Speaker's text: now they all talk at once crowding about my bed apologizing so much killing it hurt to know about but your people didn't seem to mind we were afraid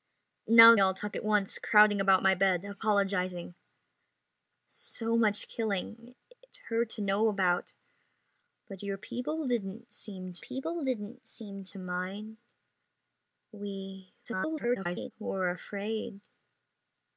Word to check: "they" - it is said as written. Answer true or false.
false